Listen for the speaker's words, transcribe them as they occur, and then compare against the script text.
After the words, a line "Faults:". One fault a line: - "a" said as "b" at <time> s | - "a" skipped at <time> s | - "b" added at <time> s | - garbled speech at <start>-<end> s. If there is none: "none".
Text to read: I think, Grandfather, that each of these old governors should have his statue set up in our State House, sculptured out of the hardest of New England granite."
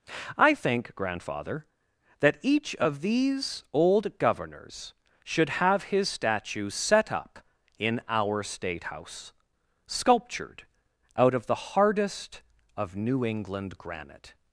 I think, Grandfather, that each of these old governors should have his statue set up in our State House, sculptured out of the hardest of New England granite."
Faults:
none